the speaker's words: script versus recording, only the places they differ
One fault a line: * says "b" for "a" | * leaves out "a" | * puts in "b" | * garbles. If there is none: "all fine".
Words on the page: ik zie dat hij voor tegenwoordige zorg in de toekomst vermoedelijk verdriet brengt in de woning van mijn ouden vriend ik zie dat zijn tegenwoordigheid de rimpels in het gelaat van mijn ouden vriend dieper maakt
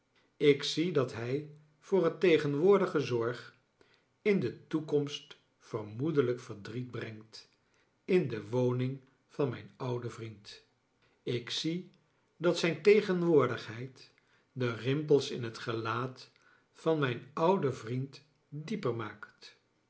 * puts in "het"